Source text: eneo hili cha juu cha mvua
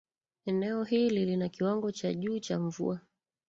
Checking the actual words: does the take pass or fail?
fail